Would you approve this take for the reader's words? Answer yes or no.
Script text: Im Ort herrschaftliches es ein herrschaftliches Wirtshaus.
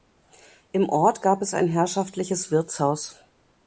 no